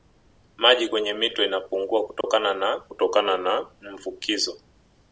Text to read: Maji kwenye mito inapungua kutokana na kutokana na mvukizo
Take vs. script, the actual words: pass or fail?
pass